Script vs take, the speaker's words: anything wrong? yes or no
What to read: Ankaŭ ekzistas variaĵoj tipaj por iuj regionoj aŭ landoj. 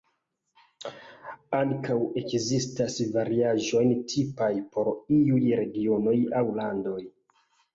no